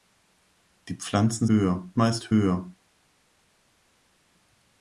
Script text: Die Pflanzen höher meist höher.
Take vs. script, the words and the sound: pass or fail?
pass